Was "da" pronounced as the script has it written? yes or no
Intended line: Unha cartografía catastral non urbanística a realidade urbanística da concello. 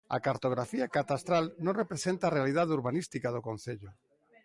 no